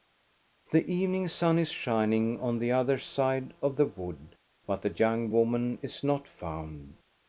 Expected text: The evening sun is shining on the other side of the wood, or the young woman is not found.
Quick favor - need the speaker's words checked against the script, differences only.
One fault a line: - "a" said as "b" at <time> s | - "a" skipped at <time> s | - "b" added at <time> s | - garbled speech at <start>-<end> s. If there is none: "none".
- "or" said as "but" at 4.6 s